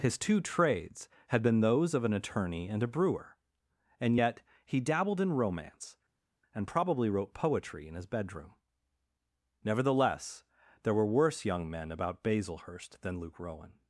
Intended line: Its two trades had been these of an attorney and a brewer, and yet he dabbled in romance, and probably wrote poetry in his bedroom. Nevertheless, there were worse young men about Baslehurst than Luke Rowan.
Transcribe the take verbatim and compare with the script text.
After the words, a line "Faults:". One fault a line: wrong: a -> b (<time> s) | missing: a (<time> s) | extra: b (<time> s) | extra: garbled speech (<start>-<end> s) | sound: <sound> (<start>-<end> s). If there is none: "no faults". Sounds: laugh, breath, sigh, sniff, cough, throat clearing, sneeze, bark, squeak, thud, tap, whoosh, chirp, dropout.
His two trades had been those of an attorney and a brewer, and yet he dabbled in romance, and probably wrote poetry in his bedroom. Nevertheless, there were worse young men about Baslehurst than Luke Rowan.
Faults:
wrong: Its -> His (0.0 s)
wrong: these -> those (1.6 s)